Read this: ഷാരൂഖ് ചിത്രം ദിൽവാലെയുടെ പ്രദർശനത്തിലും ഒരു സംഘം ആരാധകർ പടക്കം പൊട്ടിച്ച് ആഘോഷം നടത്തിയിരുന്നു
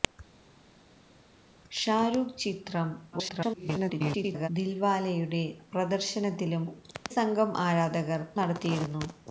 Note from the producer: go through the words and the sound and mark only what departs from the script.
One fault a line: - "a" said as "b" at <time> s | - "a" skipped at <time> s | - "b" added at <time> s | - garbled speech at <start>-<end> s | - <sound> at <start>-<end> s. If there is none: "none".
- garbled speech at 3.1-4.5 s
- "ഒരു" skipped at 6.6 s
- "പടക്കം പൊട്ടിച്ച് ആഘോഷം" skipped at 8.2 s